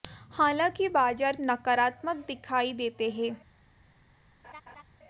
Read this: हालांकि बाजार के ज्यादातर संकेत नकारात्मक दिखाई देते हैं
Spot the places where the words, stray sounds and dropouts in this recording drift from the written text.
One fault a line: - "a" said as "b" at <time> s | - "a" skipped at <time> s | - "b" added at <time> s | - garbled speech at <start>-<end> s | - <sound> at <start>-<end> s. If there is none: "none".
- "के ज्यादातर संकेत" skipped at 1.4 s
- laugh at 4.4-4.8 s